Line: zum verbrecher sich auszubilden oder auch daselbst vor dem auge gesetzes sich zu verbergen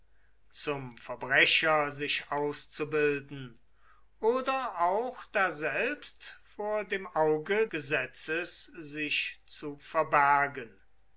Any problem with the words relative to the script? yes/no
no